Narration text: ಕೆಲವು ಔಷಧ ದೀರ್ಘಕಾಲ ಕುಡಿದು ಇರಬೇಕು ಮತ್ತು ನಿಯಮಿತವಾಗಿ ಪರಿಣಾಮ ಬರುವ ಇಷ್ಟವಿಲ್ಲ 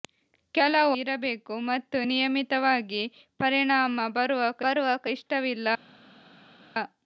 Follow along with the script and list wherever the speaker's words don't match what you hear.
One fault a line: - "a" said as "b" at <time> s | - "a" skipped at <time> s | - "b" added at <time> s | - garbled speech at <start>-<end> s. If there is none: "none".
- "ಔಷಧ ದೀರ್ಘಕಾಲ ಕುಡಿದು" skipped at 0.9 s
- "ಬರುವ" added at 4.6 s